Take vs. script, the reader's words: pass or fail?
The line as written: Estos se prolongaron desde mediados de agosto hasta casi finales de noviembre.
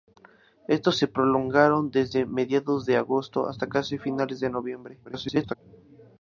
fail